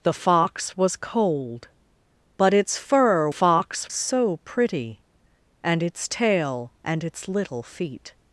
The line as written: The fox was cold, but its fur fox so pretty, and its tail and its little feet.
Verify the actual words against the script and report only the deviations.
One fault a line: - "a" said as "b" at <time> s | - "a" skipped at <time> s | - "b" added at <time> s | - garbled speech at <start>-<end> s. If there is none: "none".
none